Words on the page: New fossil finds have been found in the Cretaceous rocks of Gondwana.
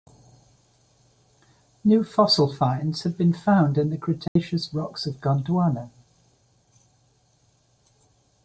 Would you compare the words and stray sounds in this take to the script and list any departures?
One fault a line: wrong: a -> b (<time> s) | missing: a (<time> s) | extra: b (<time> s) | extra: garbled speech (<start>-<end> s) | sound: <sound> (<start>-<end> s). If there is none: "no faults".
sound: dropout (4.3-4.4 s)